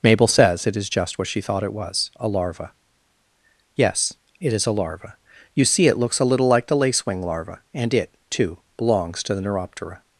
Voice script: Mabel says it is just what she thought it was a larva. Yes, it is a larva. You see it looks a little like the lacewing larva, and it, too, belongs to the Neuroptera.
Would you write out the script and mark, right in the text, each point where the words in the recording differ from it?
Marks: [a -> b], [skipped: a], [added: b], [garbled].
Mabel says it is just what she thought it was a larva. Yes, it is a larva. You see it looks a little like the lacewing larva, and it, too, belongs to the Neuroptera.